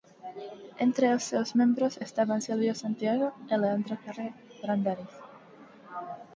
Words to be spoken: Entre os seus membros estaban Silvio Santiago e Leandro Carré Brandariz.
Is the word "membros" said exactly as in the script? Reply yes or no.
yes